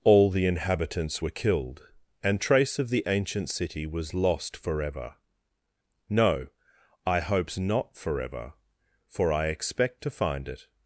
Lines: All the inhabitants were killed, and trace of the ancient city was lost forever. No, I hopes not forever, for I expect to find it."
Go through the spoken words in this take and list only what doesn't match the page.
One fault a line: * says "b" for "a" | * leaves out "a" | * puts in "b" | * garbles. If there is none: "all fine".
all fine